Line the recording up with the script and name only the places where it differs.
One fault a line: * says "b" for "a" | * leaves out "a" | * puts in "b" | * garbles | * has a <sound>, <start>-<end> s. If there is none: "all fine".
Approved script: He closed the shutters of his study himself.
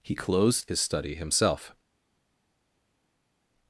* leaves out "the shutters of"